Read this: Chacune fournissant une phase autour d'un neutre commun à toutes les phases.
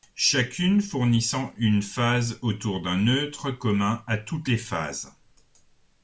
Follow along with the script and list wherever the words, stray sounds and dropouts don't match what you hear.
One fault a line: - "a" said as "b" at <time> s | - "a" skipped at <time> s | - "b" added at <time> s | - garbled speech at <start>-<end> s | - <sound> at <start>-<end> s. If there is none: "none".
none